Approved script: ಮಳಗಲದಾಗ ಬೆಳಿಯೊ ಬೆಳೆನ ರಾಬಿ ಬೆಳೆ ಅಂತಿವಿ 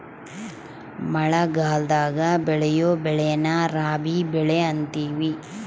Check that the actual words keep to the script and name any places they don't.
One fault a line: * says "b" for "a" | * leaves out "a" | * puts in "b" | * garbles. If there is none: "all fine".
all fine